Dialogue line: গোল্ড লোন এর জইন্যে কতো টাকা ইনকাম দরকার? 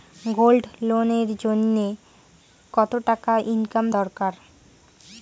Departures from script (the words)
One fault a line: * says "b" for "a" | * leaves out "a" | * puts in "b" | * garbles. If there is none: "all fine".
all fine